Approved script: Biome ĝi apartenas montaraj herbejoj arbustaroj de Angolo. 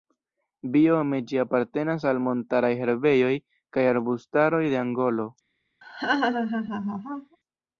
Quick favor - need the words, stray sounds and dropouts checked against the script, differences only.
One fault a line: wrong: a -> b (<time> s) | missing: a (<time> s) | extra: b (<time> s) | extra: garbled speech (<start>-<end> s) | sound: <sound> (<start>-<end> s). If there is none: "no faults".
extra: al (2.1 s)
extra: kaj (3.8 s)
sound: laugh (5.8-7.4 s)